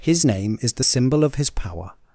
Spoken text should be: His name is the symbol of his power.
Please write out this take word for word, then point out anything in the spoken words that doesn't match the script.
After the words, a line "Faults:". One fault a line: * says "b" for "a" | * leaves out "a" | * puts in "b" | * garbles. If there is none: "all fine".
His name is the symbol of his power.
Faults:
all fine